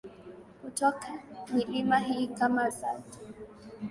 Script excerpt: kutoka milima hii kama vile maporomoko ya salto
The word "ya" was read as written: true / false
false